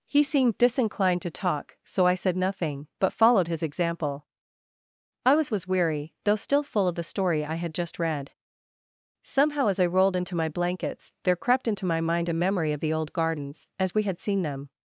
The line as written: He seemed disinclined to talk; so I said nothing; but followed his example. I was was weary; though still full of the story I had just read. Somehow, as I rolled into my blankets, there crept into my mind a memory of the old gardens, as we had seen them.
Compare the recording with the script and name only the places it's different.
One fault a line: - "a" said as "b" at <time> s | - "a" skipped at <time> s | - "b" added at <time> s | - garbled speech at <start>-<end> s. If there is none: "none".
none